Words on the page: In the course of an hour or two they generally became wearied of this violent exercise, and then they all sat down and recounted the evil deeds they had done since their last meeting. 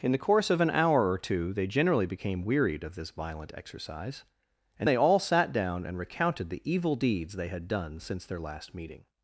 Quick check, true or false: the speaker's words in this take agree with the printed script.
false